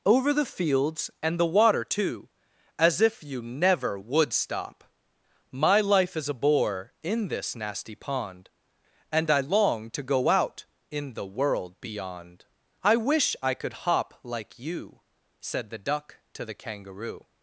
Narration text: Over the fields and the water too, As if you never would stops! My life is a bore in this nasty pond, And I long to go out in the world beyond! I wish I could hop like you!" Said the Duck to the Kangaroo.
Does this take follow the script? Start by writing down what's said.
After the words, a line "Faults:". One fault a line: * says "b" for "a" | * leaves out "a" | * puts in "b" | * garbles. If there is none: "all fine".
Over the fields and the water too, As if you never would stop! My life is a bore in this nasty pond, And I long to go out in the world beyond! I wish I could hop like you!" Said the Duck to the Kangaroo.
Faults:
* says "stop" for "stops"